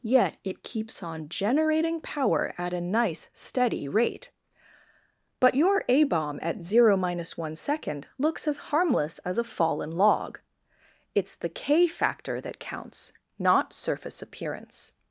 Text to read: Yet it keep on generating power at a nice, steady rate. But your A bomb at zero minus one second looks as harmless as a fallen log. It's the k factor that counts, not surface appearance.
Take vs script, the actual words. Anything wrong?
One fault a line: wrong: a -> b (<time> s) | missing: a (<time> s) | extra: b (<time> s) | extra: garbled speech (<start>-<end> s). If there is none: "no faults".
wrong: keep -> keeps (0.6 s)